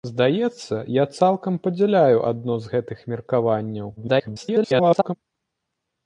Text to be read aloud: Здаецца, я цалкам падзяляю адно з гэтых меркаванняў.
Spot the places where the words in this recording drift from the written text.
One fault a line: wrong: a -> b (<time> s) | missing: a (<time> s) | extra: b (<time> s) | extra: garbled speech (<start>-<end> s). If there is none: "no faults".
extra: garbled speech (4.0-5.1 s)